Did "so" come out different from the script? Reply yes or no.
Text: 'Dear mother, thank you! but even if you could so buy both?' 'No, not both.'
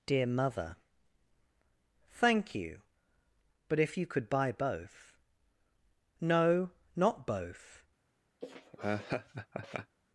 yes